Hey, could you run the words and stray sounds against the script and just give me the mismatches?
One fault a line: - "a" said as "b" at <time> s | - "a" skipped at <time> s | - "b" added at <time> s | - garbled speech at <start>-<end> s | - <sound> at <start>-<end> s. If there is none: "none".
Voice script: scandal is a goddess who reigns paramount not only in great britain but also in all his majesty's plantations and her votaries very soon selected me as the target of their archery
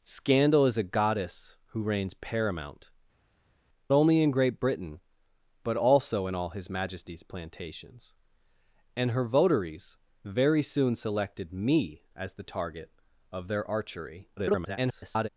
- "not" skipped at 2.9 s
- garbled speech at 14.4-15.3 s